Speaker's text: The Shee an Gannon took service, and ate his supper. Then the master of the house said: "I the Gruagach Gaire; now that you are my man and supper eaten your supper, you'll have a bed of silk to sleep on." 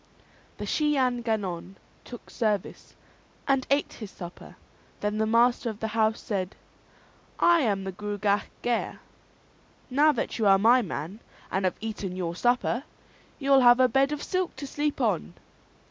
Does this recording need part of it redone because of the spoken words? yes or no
yes